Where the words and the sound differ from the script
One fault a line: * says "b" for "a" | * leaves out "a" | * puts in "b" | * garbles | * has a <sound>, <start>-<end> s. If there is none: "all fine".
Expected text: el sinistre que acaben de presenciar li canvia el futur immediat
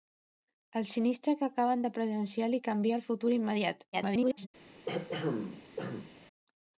* garbles
* has a throat clearing, 4.9-6.1 s